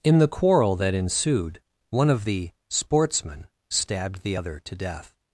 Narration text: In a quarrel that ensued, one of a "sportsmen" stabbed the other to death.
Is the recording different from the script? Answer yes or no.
yes